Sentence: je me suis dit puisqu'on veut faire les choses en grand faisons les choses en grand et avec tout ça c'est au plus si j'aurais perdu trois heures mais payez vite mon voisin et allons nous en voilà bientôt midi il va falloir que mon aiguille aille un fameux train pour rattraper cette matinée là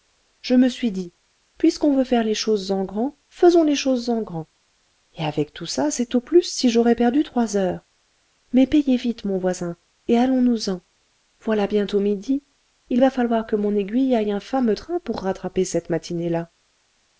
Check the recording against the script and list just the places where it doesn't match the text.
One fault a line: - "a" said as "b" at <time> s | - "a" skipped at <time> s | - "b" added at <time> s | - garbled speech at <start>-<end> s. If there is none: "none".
none